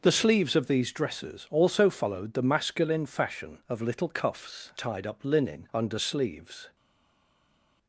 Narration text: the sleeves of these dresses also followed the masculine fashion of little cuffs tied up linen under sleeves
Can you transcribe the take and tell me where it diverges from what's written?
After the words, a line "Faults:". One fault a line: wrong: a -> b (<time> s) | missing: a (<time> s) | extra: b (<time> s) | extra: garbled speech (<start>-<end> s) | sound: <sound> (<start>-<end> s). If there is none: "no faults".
the sleeves of these dresses also followed the masculine fashion of little cuffs tied up linen under sleeves
Faults:
no faults